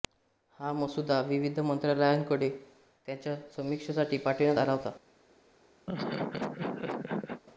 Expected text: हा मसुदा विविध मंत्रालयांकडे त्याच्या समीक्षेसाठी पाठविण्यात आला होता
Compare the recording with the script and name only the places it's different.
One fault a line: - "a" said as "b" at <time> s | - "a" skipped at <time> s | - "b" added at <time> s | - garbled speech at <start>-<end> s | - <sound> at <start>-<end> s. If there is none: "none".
- laugh at 5.9-7.4 s